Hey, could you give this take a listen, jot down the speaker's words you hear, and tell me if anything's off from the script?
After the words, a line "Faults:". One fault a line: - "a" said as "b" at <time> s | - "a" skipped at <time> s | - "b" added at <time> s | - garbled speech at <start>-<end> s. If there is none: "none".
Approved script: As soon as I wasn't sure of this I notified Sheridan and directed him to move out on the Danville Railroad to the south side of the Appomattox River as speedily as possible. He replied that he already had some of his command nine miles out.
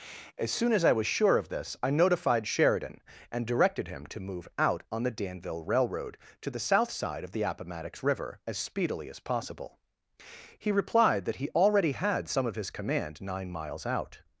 As soon as I was sure of this I notified Sheridan and directed him to move out on the Danville Railroad to the south side of the Appomattox River as speedily as possible. He replied that he already had some of his command nine miles out.
Faults:
- "wasn't" said as "was" at 0.9 s